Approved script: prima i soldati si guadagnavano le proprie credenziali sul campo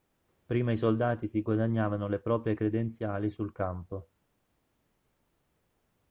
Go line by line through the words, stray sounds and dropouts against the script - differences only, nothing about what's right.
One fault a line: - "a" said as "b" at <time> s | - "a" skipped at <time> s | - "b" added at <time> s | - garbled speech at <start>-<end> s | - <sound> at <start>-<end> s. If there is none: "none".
none